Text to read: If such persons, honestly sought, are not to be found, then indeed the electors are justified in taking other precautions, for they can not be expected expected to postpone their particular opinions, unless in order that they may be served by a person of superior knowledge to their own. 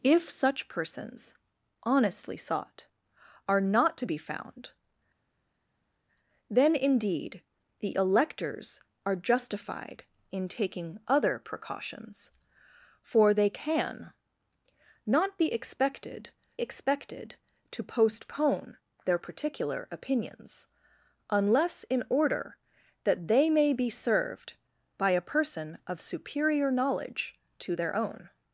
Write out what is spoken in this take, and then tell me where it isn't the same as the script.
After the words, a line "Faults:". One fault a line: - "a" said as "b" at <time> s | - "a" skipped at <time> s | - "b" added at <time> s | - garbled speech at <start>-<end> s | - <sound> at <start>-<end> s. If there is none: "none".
If such persons, honestly sought, are not to be found, then indeed the electors are justified in taking other precautions, for they can not be expected expected to postpone their particular opinions, unless in order that they may be served by a person of superior knowledge to their own.
Faults:
none